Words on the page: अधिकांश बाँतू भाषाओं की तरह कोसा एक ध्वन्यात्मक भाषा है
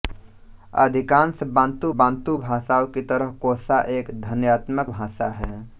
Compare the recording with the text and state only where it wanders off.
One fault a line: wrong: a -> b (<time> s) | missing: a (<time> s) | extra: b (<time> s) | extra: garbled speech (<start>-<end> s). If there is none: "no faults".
extra: बाँतू (1.9 s)